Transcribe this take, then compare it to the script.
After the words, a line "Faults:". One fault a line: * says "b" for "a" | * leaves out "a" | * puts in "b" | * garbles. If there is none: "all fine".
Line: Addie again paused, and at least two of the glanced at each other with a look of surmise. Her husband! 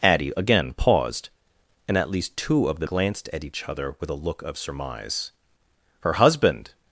Addie again paused, and at least two of the glanced at each other with a look of surmise. Her husband!
Faults:
all fine